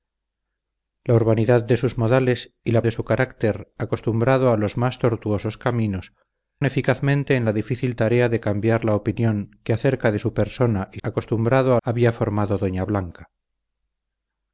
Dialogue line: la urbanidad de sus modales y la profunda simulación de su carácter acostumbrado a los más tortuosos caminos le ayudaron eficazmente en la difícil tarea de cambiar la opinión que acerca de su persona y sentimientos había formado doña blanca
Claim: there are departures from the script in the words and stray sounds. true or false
true